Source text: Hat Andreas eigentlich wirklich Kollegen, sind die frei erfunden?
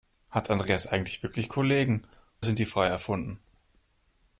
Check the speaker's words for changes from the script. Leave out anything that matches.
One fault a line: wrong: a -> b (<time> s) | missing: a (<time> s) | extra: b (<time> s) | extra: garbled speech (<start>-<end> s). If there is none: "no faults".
no faults